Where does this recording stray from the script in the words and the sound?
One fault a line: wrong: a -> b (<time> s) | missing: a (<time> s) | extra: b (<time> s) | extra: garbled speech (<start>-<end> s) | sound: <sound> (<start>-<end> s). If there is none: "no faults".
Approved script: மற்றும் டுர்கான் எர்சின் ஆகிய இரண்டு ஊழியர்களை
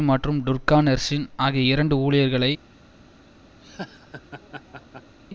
sound: laugh (3.6-5.1 s)